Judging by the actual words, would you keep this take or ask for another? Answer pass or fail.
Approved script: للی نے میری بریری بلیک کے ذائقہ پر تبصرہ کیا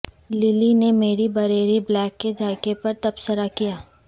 pass